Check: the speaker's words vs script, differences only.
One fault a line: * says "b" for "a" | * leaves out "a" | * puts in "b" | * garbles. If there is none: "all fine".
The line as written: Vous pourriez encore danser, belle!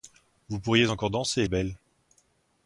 all fine